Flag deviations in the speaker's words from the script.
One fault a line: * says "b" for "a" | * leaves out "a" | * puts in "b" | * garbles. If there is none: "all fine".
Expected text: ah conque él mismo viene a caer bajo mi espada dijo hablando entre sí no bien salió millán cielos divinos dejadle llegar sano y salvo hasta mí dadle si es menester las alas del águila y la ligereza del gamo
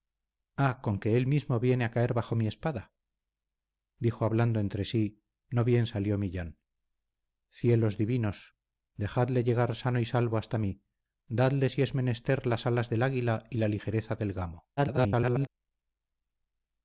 * garbles